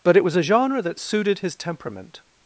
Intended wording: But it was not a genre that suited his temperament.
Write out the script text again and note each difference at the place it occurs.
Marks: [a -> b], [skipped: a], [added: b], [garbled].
But it was [skipped: not] a genre that suited his temperament.